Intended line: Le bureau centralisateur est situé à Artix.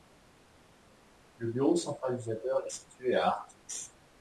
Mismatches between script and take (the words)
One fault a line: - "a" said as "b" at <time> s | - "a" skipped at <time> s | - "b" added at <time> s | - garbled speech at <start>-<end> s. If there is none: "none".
none